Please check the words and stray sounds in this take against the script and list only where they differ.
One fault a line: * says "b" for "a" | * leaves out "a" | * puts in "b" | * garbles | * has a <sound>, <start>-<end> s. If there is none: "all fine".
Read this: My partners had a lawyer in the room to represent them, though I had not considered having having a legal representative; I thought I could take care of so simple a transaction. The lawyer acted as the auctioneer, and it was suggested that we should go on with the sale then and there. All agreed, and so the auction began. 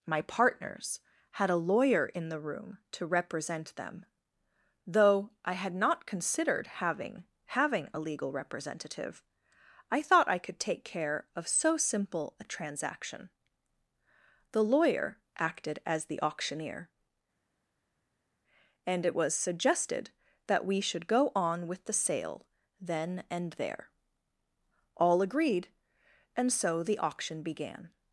all fine